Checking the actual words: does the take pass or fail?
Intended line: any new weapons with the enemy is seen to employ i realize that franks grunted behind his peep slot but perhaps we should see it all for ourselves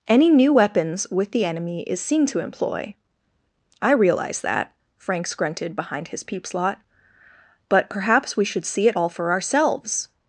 pass